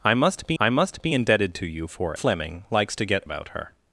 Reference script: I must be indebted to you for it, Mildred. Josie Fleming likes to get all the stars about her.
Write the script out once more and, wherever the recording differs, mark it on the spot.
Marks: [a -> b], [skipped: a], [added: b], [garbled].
I must be [added: I must be] indebted to you for [skipped: it, Mildred. Josie] Fleming likes to get [skipped: all the stars] about her.